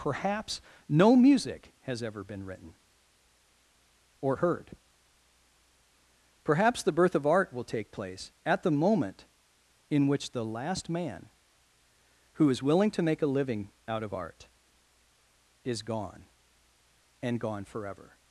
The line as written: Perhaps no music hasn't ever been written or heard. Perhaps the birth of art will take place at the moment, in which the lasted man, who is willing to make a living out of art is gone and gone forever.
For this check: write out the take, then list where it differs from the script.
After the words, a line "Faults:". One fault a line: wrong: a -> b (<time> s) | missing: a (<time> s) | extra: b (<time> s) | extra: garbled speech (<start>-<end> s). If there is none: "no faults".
Perhaps no music has ever been written or heard. Perhaps the birth of art will take place at the moment, in which the last man, who is willing to make a living out of art is gone and gone forever.
Faults:
wrong: hasn't -> has (1.8 s)
wrong: lasted -> last (10.4 s)